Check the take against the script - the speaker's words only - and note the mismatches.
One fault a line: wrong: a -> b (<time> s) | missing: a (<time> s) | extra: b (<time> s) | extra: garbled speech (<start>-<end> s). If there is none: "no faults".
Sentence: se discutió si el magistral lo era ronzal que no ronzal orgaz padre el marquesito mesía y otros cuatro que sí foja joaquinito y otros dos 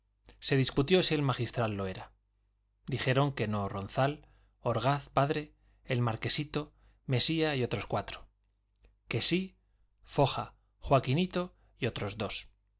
wrong: ronzal -> dijeron (2.9 s)